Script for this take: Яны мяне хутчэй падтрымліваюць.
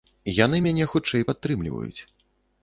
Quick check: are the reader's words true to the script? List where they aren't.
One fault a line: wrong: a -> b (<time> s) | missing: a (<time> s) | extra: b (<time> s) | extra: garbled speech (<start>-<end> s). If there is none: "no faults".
no faults